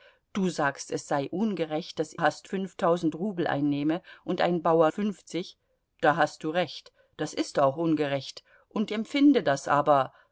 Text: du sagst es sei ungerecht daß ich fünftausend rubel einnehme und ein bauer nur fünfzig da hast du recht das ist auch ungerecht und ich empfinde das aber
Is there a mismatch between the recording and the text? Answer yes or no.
yes